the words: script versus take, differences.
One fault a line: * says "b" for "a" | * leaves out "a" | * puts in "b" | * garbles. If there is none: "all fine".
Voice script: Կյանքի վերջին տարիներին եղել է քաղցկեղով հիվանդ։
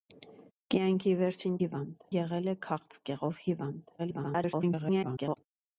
* says "հիվանդ" for "տարիներին"
* garbles